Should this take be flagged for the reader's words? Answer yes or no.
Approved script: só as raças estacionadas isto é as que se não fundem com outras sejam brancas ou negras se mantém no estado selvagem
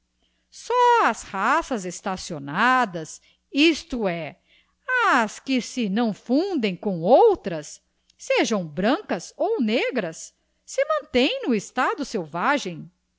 no